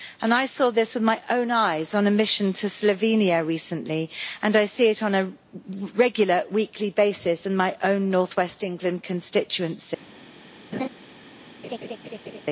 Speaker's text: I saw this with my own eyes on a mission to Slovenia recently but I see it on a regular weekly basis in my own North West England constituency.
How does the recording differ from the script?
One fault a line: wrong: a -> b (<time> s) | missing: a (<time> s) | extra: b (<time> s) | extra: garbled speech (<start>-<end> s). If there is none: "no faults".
wrong: but -> and (4.4 s)